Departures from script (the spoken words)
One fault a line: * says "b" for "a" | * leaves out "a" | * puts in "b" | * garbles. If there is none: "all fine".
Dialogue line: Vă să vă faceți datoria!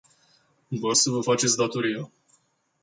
all fine